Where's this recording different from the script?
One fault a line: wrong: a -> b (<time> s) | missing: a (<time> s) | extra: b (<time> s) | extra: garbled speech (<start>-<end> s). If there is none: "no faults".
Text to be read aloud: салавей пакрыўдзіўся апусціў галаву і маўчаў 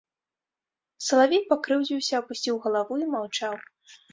no faults